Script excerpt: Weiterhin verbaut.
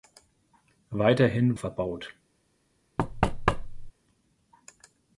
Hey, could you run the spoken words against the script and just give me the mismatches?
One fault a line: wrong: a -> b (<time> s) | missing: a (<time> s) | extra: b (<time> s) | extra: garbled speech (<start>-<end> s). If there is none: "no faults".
no faults